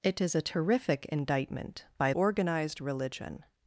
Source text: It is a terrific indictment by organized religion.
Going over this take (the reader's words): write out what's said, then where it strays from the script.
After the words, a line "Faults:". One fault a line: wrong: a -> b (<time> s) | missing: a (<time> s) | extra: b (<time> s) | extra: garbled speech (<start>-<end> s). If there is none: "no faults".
It is a terrific indictment by organized religion.
Faults:
no faults